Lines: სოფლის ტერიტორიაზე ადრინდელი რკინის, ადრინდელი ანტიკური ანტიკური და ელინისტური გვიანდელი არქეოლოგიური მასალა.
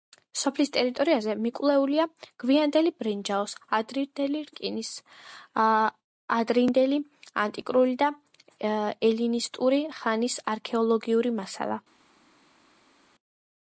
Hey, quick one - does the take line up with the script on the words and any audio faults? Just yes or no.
no